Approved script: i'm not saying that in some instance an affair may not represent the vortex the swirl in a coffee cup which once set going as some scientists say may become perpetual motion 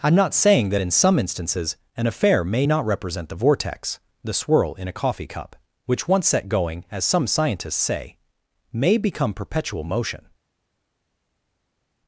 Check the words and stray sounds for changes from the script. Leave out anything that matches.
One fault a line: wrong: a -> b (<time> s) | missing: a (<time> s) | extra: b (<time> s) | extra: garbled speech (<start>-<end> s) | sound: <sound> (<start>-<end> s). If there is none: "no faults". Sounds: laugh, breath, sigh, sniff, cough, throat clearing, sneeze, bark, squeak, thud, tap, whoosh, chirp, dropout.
wrong: instance -> instances (1.2 s)